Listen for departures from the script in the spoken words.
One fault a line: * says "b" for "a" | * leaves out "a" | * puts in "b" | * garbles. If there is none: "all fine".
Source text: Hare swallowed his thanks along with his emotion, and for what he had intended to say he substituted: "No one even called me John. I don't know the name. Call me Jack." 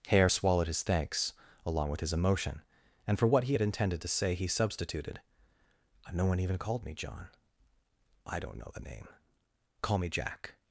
all fine